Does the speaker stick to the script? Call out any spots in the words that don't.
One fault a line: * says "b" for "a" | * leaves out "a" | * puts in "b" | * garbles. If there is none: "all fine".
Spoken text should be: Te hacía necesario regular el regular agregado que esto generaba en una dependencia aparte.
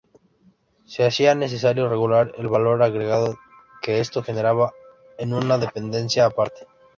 * says "Se" for "Te"
* says "valor" for "regular"